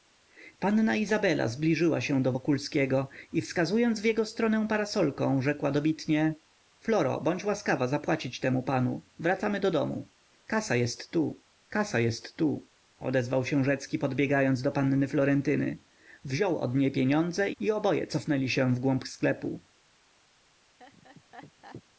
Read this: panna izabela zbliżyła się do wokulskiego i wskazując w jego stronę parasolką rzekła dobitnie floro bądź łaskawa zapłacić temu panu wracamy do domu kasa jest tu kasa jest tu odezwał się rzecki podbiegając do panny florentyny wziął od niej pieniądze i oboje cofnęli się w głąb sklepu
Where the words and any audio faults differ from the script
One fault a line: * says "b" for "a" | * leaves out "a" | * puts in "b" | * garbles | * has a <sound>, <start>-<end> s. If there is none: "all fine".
* has a laugh, 20.8-21.8 s